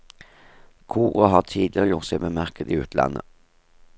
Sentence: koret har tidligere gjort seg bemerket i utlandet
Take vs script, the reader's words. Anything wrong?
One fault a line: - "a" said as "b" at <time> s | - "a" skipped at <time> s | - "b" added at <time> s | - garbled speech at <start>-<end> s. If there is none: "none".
none